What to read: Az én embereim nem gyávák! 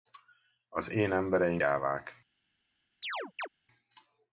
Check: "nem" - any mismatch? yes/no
yes